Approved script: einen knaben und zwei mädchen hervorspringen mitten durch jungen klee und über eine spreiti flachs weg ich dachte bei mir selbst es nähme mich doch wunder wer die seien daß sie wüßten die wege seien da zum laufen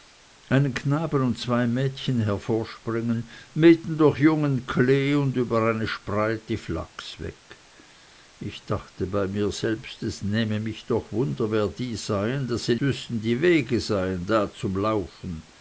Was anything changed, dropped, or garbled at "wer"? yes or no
no